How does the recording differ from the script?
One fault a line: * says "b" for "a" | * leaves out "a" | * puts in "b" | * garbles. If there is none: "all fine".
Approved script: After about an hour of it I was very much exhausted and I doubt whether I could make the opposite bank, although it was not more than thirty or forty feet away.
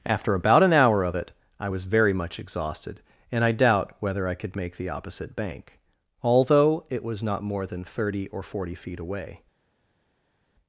all fine